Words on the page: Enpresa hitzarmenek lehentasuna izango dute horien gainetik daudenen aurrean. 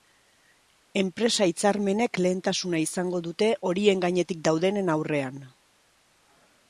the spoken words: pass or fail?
pass